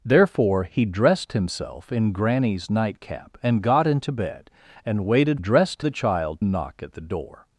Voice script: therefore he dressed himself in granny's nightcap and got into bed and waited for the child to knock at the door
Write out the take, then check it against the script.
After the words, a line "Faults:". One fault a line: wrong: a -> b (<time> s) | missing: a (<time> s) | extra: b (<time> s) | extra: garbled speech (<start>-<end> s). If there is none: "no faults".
therefore he dressed himself in granny's nightcap and got into bed and waited dressed the child knock at the door
Faults:
wrong: for -> dressed (5.4 s)
missing: to (6.4 s)